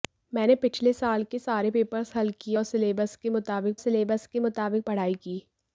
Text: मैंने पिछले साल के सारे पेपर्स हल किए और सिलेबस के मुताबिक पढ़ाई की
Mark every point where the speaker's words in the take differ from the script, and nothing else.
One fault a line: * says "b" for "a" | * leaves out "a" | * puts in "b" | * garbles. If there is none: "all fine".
* puts in "सिलेबस के मुताबिक"